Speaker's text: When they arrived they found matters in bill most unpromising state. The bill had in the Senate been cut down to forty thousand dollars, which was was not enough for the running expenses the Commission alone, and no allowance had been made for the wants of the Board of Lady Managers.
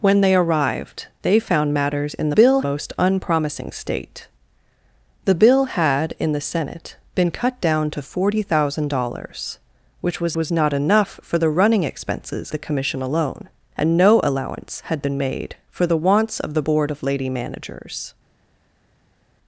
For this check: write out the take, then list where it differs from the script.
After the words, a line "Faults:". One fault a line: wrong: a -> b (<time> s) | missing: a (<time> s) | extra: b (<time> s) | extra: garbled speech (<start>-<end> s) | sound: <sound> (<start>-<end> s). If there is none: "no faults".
When they arrived they found matters in bill most unpromising state. The bill had in the Senate been cut down to forty thousand dollars, which was was not enough for the running expenses the Commission alone, and no allowance had been made for the wants of the Board of Lady Managers.
Faults:
no faults